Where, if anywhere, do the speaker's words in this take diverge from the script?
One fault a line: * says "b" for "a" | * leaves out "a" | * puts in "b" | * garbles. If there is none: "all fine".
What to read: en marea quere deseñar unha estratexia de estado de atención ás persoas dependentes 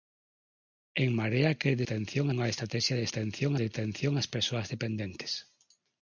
* says "atención" for "deseñar"
* says "atención" for "estado"